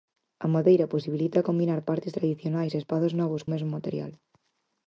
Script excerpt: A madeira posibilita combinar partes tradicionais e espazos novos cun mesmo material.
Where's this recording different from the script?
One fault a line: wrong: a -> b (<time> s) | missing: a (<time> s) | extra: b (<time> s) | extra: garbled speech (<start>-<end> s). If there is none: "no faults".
missing: cun (3.5 s)